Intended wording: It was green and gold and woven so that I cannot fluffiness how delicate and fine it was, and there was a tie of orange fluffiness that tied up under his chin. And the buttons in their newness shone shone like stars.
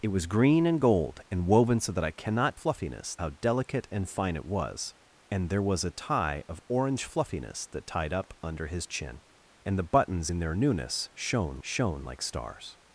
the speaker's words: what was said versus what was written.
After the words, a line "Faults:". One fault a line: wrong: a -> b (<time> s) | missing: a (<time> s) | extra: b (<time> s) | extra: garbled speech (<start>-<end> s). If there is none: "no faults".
It was green and gold and woven so that I cannot fluffiness how delicate and fine it was, and there was a tie of orange fluffiness that tied up under his chin. And the buttons in their newness shone shone like stars.
Faults:
no faults